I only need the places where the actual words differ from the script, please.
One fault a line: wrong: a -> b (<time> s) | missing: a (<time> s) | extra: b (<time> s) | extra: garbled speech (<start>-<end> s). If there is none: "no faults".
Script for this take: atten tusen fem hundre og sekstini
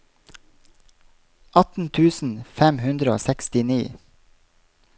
no faults